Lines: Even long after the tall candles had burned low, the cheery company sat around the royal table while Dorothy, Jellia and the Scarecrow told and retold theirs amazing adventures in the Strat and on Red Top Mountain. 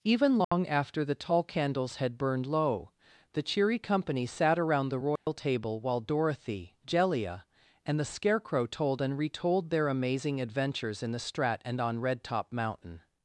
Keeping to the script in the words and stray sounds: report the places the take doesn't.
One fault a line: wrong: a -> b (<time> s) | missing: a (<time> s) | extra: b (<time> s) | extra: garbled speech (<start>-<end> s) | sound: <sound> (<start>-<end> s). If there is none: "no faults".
sound: dropout (0.4-0.5 s)
sound: dropout (5.2-5.3 s)
wrong: theirs -> their (9.7 s)